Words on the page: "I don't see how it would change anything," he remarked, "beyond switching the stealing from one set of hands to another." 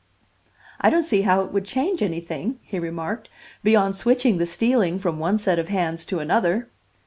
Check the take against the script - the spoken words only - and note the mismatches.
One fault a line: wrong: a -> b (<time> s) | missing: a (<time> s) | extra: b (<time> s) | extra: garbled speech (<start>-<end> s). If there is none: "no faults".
no faults